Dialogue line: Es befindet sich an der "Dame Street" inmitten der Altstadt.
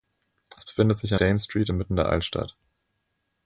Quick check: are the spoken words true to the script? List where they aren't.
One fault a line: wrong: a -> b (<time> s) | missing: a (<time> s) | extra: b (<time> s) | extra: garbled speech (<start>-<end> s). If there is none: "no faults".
missing: der (1.2 s)